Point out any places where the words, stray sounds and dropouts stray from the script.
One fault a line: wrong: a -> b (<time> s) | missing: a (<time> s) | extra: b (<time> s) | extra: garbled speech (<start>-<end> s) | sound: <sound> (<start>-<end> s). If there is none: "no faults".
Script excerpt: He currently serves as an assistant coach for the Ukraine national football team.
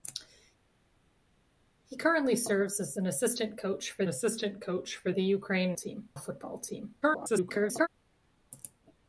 extra: assistant coach for (4.1 s)
wrong: national -> team (5.7 s)
extra: garbled speech (7.0-7.9 s)